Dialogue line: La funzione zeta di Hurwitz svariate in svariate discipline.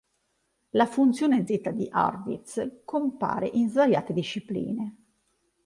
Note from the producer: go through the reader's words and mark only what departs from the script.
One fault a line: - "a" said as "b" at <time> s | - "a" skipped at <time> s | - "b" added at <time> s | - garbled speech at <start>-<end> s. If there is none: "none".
- "svariate" said as "compare" at 2.8 s